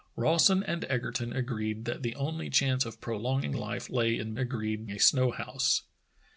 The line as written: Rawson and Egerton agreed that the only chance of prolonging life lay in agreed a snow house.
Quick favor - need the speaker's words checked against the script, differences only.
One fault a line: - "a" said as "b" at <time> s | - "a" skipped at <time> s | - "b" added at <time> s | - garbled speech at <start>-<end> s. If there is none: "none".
none